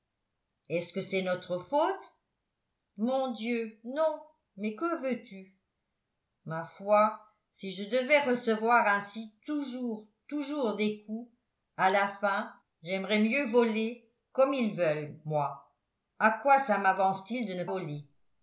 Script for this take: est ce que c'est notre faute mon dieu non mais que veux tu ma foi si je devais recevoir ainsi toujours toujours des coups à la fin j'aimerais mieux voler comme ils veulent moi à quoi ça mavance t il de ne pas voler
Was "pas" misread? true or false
true